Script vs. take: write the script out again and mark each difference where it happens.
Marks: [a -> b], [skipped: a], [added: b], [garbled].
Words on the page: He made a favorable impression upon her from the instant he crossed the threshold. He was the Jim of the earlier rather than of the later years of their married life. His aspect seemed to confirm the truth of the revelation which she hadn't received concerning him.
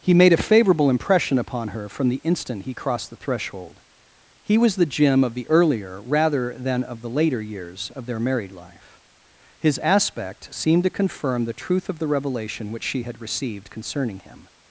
He made a favorable impression upon her from the instant he crossed the threshold. He was the Jim of the earlier rather than of the later years of their married life. His aspect seemed to confirm the truth of the revelation which she [hadn't -> had] received concerning him.